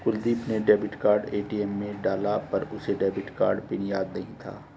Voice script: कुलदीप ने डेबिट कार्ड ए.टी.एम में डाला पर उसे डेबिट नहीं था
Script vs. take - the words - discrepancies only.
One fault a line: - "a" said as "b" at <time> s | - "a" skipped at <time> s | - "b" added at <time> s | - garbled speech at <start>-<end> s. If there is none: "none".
- "कार्ड पिन याद" added at 3.3 s